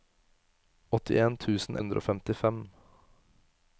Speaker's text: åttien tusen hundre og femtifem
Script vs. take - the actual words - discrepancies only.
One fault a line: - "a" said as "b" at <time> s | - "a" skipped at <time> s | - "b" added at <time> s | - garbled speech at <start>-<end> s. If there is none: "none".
none